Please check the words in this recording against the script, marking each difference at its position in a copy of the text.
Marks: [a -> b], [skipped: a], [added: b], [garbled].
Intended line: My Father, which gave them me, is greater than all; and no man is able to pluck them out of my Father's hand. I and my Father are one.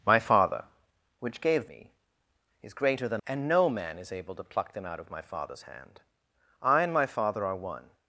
My Father, which gave [skipped: them] me, is greater than [skipped: all;] and no man is able to pluck them out of my Father's hand. I and my Father are one.